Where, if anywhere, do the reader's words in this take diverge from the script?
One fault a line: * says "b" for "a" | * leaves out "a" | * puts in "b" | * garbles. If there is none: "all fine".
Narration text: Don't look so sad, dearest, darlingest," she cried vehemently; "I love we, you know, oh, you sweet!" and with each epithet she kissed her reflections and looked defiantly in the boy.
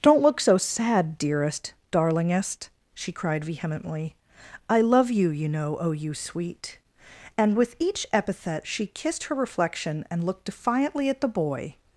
* says "you" for "we"
* says "reflection" for "reflections"
* says "at" for "in"